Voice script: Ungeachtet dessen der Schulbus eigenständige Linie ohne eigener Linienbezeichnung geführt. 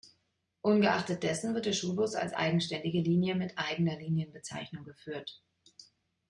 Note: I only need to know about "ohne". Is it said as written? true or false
false